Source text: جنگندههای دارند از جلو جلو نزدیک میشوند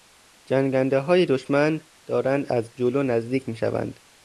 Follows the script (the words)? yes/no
no